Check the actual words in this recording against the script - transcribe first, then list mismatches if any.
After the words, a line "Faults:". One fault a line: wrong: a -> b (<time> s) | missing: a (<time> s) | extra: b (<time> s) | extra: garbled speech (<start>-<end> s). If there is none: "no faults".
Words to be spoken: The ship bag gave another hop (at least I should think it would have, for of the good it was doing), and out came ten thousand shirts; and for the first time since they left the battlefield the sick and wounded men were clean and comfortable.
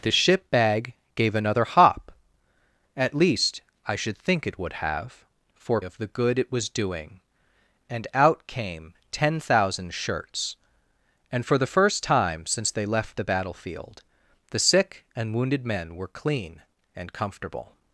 The ship bag gave another hop (at least I should think it would have, for of the good it was doing), and out came ten thousand shirts; and for the first time since they left the battlefield the sick and wounded men were clean and comfortable.
Faults:
no faults